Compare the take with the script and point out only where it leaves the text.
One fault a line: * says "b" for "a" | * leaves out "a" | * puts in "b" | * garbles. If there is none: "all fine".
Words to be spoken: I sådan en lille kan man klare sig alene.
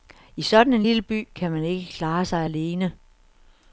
* puts in "by"
* puts in "ikke"